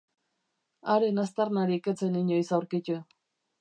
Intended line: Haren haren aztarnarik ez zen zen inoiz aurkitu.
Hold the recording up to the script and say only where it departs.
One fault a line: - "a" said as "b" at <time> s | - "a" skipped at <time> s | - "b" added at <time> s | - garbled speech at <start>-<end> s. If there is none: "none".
- "haren" skipped at 1.2 s
- "zen" skipped at 2.2 s